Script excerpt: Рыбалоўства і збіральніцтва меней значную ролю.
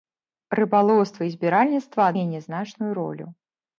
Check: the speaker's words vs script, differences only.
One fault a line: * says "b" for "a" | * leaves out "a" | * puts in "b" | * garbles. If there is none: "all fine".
all fine